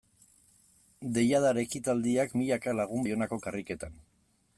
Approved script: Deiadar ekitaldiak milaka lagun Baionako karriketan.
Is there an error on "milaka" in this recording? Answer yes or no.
no